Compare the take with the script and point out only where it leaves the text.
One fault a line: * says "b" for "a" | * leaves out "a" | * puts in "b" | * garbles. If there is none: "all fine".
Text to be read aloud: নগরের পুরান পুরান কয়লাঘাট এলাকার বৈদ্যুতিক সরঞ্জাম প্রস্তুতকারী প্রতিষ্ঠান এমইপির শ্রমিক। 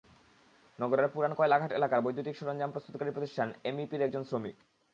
* leaves out "পুরান"
* puts in "একজন"